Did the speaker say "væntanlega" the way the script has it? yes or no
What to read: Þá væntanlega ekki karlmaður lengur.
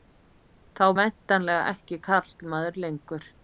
yes